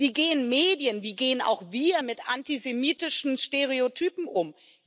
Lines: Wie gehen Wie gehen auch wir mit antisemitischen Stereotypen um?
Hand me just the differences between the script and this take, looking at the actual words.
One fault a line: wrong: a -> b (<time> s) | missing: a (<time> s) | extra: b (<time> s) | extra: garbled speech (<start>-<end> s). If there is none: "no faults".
extra: Medien (0.5 s)